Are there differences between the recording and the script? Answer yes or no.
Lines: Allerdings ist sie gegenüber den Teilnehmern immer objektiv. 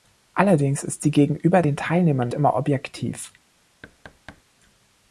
no